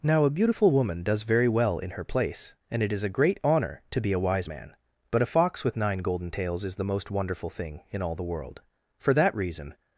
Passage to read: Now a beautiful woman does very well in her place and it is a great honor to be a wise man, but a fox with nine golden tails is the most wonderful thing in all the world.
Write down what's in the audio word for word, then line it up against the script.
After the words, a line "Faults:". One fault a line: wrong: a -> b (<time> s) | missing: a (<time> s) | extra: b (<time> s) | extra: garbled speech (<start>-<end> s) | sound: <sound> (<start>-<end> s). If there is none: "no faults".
Now a beautiful woman does very well in her place and it is a great honor to be a wise man, but a fox with nine golden tails is the most wonderful thing in all the world. For that reason
Faults:
extra: For that reason (9.0 s)